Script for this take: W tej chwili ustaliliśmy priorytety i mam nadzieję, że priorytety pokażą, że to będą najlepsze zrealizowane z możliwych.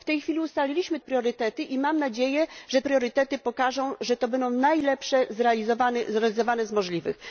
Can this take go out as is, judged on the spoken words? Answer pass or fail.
pass